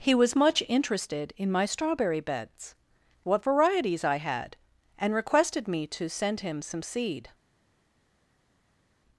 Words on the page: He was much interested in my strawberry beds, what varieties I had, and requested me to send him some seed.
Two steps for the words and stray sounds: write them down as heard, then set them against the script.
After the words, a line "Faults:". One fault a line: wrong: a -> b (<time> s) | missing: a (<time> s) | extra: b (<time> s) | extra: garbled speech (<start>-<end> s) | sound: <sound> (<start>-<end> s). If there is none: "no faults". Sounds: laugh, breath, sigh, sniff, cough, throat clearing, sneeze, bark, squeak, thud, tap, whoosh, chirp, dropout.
He was much interested in my strawberry beds, what varieties I had, and requested me to send him some seed.
Faults:
no faults